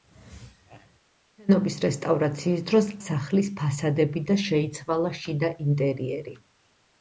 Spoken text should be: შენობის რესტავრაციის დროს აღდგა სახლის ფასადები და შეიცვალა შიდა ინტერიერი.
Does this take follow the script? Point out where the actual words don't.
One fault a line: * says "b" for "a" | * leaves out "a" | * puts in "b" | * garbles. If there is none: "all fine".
* leaves out "აღდგა"